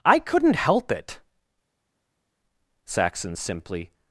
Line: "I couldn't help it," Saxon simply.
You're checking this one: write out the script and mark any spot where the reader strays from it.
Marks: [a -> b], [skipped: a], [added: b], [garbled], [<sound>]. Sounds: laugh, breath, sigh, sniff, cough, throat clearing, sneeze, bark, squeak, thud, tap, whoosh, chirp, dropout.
"I couldn't help it," Saxon simply.